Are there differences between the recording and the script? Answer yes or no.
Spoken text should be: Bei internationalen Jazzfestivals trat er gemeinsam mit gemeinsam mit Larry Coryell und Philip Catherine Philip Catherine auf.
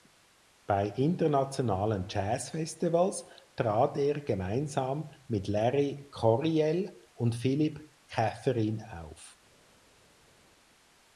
yes